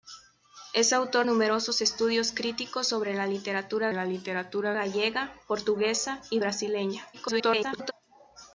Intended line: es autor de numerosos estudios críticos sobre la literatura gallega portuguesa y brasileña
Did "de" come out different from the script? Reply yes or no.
yes